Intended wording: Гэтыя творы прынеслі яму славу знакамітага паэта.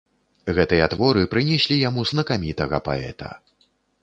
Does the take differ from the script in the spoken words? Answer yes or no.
yes